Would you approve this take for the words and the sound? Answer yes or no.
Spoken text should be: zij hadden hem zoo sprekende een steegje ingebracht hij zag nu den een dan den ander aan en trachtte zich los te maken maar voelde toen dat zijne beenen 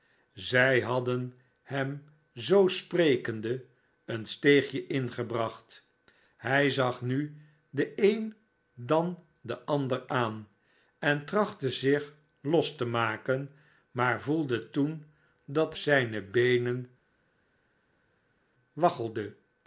yes